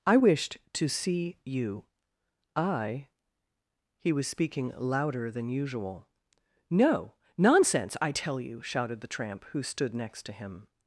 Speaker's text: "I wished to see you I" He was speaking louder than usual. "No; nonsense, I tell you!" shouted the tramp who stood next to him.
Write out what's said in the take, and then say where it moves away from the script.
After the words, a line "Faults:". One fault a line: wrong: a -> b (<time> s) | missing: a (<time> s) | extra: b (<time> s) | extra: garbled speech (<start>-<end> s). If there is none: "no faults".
"I wished to see you I" He was speaking louder than usual. "No; nonsense, I tell you!" shouted the tramp who stood next to him.
Faults:
no faults